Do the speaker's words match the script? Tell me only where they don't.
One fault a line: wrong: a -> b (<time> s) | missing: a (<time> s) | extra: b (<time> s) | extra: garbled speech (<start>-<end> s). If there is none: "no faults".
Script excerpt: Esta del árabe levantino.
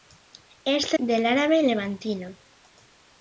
no faults